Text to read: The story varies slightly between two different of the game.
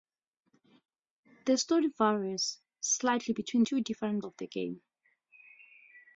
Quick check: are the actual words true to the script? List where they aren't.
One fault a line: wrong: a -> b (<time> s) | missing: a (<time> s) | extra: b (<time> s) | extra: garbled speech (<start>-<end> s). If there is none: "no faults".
no faults